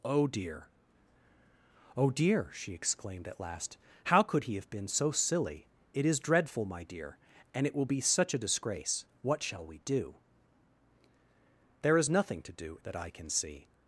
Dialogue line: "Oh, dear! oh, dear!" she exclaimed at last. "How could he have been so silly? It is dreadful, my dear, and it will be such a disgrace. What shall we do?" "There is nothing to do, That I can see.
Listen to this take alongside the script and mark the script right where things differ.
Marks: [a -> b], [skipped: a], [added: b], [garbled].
"Oh, dear! oh, dear!" she exclaimed at last. "How could he have been so silly? It is dreadful, my dear, and it will be such a disgrace. What shall we do?" "There is nothing to do, That I can see.